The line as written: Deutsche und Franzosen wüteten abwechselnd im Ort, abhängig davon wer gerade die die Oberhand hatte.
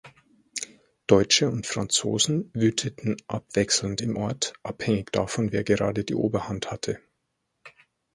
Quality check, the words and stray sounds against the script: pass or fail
fail